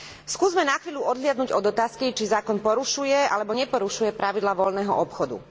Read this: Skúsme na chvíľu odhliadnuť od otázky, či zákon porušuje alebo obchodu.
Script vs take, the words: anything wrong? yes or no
yes